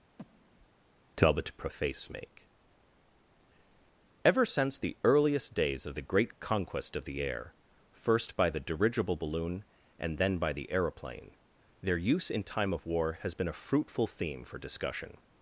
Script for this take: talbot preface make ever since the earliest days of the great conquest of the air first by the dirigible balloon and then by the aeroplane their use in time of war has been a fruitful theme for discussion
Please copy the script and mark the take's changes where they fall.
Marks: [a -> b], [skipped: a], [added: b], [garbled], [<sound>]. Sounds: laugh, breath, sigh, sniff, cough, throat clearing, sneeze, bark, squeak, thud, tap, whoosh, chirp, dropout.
[breath] talbot preface make ever since the earliest days of the great conquest of the air first by the dirigible balloon and then by the aeroplane their use in time of war has been a fruitful theme for discussion